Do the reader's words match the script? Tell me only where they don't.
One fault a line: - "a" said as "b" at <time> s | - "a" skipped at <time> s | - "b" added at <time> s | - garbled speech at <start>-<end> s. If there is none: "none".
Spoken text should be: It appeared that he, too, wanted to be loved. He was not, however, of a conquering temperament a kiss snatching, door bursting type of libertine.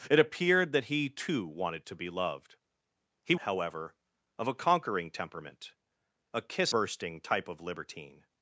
- "was not" skipped at 3.4 s
- "snatching door" skipped at 6.7 s